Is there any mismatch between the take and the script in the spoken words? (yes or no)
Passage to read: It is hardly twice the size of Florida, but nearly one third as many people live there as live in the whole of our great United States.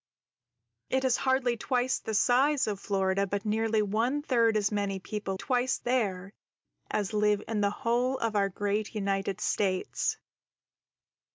yes